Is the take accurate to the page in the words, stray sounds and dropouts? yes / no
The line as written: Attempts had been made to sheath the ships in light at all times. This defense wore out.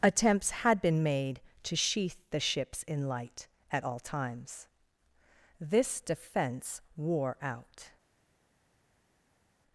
yes